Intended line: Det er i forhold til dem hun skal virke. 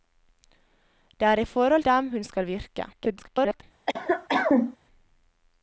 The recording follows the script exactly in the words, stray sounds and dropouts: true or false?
false